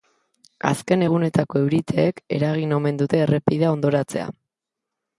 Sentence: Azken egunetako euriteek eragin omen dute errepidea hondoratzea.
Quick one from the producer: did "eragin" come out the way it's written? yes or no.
yes